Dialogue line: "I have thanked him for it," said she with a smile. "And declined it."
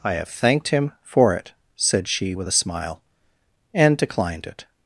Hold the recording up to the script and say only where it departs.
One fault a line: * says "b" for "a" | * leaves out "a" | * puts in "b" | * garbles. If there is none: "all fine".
all fine